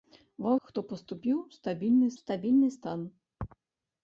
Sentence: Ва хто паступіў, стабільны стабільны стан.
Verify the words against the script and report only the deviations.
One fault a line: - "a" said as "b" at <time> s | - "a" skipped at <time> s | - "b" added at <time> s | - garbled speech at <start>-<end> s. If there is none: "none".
none